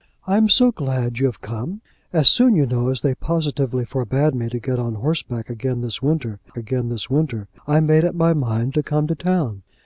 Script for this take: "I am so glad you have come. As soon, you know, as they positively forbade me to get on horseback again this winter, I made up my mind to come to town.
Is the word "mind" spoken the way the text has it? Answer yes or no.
yes